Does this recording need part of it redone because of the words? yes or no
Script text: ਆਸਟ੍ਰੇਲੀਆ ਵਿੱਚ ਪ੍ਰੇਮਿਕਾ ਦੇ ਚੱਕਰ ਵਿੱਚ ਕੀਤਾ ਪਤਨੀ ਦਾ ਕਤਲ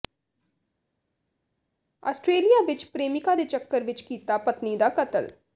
no